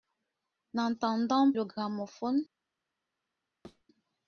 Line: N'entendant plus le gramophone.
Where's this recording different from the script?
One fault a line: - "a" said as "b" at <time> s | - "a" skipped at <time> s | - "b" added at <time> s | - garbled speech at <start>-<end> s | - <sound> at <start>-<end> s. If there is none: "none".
- "plus" skipped at 1.5 s
- thud at 3.6-3.8 s